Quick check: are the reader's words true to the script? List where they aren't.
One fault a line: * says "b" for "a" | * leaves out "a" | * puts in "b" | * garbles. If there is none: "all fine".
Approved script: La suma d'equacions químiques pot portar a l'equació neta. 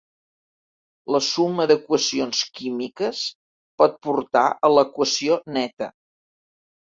all fine